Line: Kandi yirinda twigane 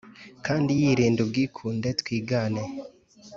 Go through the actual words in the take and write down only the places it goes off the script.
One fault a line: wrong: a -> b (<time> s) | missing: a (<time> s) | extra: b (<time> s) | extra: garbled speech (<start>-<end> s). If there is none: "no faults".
extra: ubwikunde (1.3 s)